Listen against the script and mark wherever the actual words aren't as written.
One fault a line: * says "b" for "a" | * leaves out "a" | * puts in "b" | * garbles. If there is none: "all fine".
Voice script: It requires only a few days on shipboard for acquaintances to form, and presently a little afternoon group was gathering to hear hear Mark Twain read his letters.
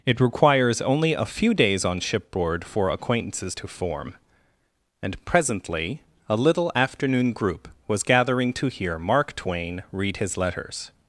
* leaves out "hear"